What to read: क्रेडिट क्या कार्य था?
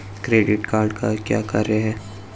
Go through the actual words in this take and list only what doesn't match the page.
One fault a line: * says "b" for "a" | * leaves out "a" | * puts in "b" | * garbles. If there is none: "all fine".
* puts in "कार्ड का"
* says "है" for "था"